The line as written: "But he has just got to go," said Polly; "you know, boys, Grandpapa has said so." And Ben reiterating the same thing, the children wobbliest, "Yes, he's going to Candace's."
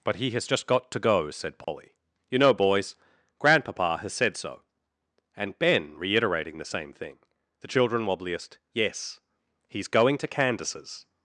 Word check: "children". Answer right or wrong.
right